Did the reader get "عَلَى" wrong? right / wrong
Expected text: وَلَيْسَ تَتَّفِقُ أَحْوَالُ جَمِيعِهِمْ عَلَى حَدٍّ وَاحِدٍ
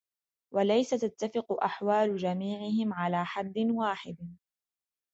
right